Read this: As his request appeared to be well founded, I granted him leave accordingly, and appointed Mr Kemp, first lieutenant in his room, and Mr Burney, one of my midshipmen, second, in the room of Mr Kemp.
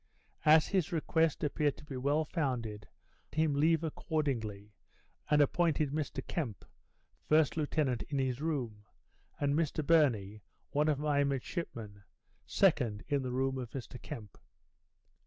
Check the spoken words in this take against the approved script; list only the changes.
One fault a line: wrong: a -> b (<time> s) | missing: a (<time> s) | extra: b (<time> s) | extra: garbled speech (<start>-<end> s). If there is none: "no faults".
missing: I granted (2.9 s)